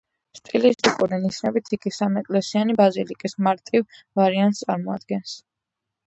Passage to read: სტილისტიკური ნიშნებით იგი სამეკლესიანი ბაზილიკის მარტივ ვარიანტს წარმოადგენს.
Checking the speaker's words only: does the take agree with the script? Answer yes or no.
yes